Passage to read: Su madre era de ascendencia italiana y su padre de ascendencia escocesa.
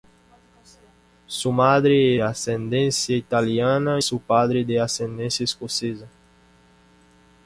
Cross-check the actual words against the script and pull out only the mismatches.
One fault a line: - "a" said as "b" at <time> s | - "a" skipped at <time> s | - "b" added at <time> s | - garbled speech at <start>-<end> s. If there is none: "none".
- "era de" skipped at 2.1 s
- "y" skipped at 4.0 s